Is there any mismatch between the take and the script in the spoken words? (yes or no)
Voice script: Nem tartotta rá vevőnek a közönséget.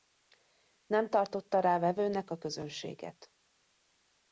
no